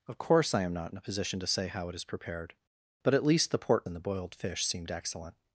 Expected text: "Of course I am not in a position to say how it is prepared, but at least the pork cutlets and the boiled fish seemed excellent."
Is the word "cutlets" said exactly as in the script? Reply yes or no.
no